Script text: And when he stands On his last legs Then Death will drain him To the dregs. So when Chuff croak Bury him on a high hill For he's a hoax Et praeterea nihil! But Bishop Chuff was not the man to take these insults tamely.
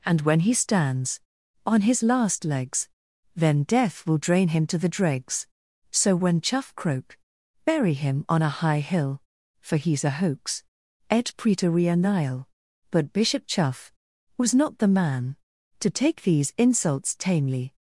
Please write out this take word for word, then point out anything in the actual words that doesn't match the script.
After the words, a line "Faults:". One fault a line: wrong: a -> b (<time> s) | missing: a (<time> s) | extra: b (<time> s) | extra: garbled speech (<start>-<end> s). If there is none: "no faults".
And when he stands On his last legs Then Death will drain him To the dregs. So when Chuff croak Bury him on a high hill For he's a hoax Et praeterea nihil! But Bishop Chuff was not the man to take these insults tamely.
Faults:
no faults